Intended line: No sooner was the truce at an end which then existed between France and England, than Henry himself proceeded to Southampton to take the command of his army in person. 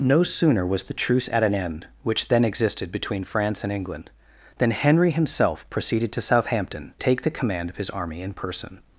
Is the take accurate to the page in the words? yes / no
no